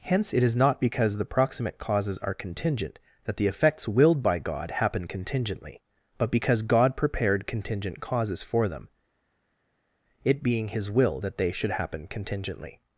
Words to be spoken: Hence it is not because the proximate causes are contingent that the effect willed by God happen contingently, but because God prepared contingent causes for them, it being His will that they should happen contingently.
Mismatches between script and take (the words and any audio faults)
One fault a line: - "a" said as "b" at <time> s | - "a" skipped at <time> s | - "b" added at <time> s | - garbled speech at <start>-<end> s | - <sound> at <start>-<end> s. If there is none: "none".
- "effect" said as "effects" at 3.5 s